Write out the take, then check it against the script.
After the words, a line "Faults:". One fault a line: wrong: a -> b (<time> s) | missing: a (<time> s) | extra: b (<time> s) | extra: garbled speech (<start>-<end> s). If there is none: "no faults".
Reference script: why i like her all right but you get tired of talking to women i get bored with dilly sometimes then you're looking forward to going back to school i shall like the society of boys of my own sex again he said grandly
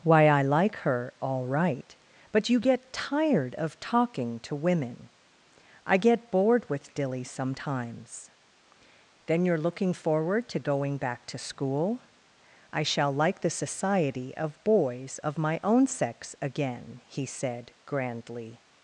why i like her all right but you get tired of talking to women i get bored with dilly sometimes then you're looking forward to going back to school i shall like the society of boys of my own sex again he said grandly
Faults:
no faults